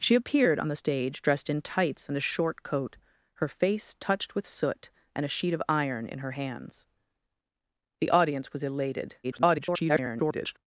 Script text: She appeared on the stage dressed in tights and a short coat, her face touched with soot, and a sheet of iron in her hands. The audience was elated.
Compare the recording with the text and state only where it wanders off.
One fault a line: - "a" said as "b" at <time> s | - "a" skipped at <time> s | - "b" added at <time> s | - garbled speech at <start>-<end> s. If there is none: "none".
- garbled speech at 9.2-10.6 s